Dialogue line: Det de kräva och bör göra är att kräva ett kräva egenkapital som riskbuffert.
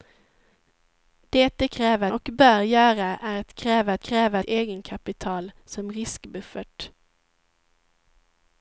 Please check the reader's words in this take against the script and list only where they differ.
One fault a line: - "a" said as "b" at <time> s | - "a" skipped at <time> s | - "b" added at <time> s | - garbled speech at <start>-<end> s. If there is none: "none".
none